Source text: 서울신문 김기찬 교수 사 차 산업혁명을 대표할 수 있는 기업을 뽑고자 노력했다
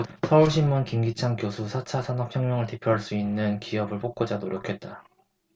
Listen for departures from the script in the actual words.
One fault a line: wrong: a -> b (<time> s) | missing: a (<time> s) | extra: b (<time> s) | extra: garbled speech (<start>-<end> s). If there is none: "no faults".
no faults